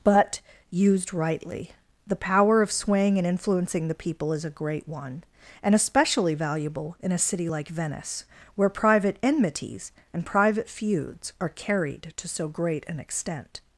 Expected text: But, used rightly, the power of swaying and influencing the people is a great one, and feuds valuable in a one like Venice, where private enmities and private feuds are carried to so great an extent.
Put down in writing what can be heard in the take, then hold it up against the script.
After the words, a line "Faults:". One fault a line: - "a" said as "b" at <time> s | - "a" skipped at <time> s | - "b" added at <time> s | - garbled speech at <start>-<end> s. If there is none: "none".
But, used rightly, the power of swaying and influencing the people is a great one, and especially valuable in a city like Venice, where private enmities and private feuds are carried to so great an extent.
Faults:
- "feuds" said as "especially" at 5.8 s
- "one" said as "city" at 7.2 s